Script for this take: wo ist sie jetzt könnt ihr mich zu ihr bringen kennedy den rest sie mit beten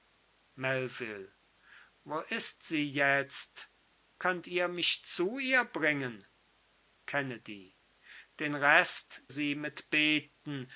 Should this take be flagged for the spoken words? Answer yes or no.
no